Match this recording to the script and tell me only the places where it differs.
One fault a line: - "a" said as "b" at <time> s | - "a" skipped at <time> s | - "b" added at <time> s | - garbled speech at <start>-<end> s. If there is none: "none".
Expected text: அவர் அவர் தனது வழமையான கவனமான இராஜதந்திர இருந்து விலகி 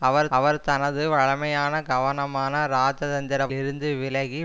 none